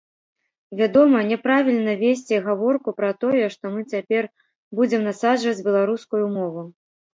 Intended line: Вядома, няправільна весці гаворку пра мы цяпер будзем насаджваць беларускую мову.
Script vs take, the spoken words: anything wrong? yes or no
yes